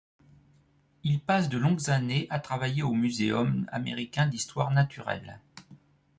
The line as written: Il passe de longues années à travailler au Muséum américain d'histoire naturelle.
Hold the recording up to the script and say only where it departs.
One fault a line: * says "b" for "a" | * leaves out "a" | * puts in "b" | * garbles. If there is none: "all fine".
all fine